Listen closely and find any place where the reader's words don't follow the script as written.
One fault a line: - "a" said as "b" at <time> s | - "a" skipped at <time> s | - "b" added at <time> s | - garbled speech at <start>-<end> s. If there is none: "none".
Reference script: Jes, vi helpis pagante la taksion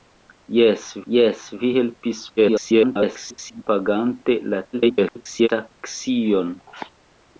- "jes" added at 1.1 s
- garbled speech at 2.4-3.6 s
- garbled speech at 4.7-5.5 s